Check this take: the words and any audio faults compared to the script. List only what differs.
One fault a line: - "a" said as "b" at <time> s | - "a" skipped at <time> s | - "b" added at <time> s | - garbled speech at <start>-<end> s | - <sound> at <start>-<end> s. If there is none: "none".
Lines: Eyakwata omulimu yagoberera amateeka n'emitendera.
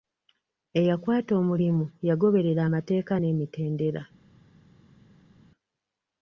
none